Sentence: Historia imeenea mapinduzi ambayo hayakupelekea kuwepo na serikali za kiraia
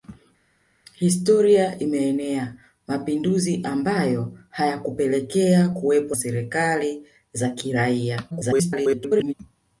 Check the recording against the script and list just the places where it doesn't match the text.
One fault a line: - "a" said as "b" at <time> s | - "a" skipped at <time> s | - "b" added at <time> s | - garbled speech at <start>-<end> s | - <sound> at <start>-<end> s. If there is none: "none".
- "na" skipped at 6.1 s
- garbled speech at 8.3-9.3 s